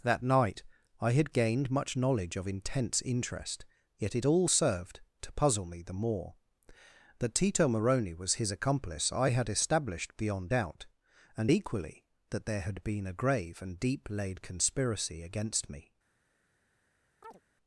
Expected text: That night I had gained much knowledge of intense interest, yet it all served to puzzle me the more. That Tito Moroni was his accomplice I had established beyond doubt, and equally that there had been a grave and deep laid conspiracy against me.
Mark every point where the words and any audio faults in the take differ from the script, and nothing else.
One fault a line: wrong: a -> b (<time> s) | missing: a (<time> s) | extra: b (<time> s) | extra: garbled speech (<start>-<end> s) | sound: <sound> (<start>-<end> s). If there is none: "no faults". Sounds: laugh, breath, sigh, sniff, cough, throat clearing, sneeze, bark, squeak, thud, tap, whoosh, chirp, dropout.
sound: chirp (17.2-17.4 s)